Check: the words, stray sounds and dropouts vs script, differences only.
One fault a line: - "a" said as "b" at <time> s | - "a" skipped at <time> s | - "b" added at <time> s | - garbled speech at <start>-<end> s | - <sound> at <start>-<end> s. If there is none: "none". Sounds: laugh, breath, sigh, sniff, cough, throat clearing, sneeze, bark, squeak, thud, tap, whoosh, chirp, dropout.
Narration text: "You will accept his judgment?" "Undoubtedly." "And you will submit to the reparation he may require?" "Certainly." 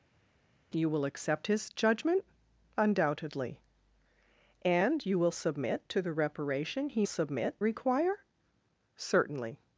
- "may" said as "submit" at 7.0 s